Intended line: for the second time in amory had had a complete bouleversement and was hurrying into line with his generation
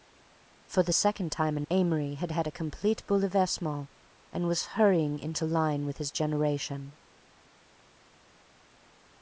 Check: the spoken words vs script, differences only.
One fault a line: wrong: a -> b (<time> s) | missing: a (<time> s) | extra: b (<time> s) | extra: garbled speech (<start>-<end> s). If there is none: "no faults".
no faults